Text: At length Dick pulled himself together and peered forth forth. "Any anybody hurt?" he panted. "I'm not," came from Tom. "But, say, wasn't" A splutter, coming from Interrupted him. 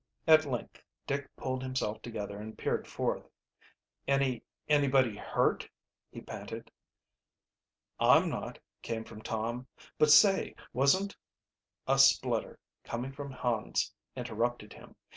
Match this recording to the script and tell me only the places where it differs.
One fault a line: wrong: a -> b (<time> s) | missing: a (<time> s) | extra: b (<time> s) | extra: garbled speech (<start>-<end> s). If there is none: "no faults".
missing: forth (3.3 s)
extra: Hans (13.3 s)